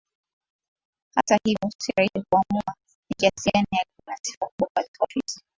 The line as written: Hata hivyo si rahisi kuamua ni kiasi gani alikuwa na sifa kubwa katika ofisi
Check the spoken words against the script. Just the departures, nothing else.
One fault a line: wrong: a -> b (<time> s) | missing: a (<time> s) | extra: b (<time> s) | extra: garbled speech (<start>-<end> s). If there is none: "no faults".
no faults